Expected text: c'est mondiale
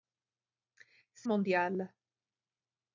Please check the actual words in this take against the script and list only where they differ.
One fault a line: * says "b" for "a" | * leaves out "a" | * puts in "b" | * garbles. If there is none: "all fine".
all fine